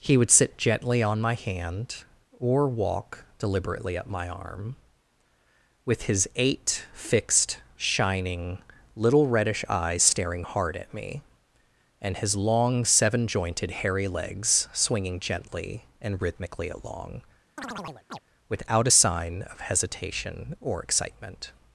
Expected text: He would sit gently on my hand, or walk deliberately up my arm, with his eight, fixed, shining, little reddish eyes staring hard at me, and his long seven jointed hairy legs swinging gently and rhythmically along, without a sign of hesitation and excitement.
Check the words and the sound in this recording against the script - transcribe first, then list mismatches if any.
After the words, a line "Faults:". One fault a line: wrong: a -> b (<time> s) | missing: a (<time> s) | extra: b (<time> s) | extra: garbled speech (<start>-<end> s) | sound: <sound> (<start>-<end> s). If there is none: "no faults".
He would sit gently on my hand, or walk deliberately up my arm, with his eight, fixed, shining, little reddish eyes staring hard at me, and his long seven jointed hairy legs swinging gently and rhythmically along, without a sign of hesitation or excitement.
Faults:
sound: chirp (17.6-18.2 s)
wrong: and -> or (20.6 s)